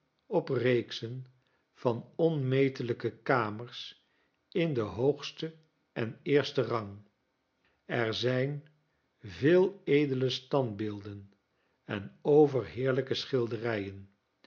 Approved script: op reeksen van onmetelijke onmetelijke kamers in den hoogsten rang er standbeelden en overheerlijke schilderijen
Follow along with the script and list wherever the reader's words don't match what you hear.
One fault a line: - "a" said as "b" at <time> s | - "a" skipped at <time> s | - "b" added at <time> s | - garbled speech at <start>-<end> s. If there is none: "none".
- "onmetelijke" skipped at 3.1 s
- "en eersten" added at 5.9 s
- "zijn veel edele" added at 8.1 s